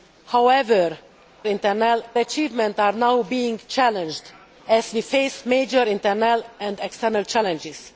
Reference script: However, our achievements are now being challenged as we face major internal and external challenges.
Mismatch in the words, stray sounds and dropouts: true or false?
true